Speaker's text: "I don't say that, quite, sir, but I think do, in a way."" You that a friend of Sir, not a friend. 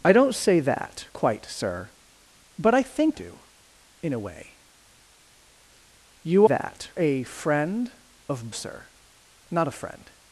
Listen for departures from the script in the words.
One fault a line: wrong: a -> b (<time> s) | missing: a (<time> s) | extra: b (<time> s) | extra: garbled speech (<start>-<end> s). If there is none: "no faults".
no faults